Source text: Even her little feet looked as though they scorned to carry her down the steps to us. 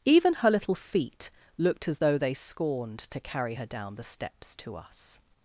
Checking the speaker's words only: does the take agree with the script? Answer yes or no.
yes